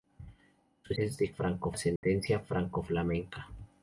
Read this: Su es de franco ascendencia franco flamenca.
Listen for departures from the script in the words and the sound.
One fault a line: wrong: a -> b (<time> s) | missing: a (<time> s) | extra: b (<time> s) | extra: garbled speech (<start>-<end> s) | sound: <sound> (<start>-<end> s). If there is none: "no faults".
sound: dropout (2.0-2.0 s)